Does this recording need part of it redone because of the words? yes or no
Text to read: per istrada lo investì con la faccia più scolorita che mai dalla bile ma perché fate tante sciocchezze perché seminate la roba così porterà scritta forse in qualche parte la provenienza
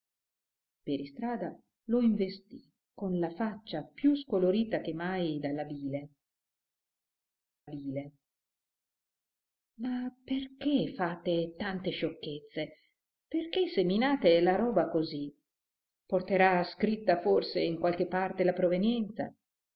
yes